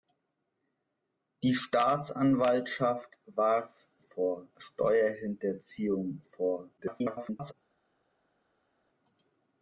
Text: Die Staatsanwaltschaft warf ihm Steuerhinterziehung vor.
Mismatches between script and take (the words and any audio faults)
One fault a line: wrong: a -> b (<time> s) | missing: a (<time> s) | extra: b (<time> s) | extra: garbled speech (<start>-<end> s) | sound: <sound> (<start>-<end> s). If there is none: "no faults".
wrong: ihm -> vor (4.0 s)
extra: garbled speech (6.8-7.5 s)